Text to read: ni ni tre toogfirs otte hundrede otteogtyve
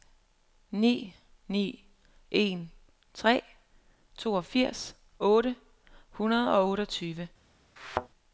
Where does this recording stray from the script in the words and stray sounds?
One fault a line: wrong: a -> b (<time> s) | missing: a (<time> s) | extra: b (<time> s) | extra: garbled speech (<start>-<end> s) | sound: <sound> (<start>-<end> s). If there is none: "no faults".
extra: en (2.3 s)
extra: og (6.6 s)
sound: thud (7.8-8.1 s)